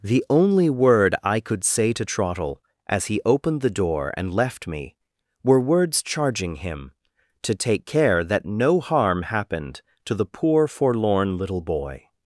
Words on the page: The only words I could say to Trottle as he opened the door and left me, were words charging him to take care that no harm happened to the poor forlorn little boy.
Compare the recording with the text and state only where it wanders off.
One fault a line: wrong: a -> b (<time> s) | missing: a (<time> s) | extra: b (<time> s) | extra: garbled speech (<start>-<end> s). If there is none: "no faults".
wrong: words -> word (0.7 s)